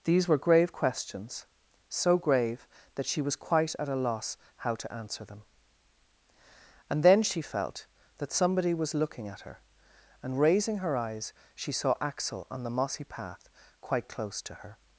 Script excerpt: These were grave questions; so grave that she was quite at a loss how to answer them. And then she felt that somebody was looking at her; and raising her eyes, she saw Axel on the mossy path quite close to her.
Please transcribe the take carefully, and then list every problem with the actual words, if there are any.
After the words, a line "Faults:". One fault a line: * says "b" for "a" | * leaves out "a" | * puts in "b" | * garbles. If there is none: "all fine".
These were grave questions; so grave that she was quite at a loss how to answer them. And then she felt that somebody was looking at her; and raising her eyes, she saw Axel on the mossy path quite close to her.
Faults:
all fine